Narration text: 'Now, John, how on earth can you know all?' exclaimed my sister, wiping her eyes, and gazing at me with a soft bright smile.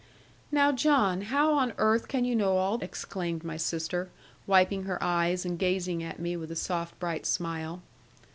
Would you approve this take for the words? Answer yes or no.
yes